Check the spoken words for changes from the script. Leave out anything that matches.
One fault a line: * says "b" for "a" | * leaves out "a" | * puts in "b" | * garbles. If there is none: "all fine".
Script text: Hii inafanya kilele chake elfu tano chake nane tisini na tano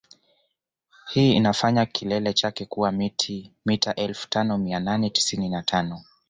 * puts in "kuwa mita"
* says "mia" for "chake"